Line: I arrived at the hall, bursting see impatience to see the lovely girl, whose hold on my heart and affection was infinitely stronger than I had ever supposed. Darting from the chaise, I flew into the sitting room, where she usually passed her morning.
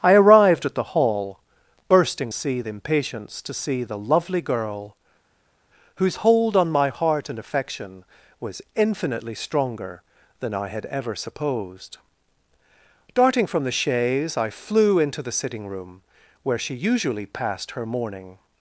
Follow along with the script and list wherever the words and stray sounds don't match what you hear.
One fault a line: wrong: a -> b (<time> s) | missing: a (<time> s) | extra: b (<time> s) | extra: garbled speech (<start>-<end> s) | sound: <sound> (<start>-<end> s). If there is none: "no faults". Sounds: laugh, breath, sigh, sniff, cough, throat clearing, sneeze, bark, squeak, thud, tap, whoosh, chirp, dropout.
no faults